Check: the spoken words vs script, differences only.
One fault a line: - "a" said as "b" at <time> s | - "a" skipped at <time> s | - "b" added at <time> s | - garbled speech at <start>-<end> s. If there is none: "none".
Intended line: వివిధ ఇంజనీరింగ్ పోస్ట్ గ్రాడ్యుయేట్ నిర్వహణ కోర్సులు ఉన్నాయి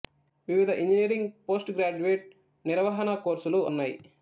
none